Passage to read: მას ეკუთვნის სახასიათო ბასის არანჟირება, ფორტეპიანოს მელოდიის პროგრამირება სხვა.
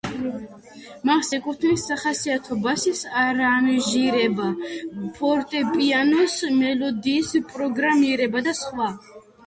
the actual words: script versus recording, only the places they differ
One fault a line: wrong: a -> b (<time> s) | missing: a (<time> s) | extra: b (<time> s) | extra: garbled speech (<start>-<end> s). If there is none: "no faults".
extra: და (8.5 s)